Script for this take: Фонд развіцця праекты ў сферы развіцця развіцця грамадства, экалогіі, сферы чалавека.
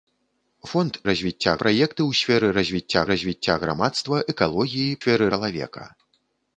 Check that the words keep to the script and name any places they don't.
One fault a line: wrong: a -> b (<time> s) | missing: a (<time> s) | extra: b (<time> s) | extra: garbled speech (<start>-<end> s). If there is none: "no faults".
no faults